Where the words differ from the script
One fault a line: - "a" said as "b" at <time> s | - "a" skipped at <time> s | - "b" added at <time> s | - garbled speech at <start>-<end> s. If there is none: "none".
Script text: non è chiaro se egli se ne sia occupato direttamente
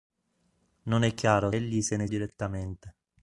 - "se" skipped at 1.5 s
- "sia occupato" skipped at 2.1 s